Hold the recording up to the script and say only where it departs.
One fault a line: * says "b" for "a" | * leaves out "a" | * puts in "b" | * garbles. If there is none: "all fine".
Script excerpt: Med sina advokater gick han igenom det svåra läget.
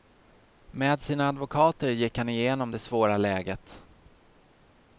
all fine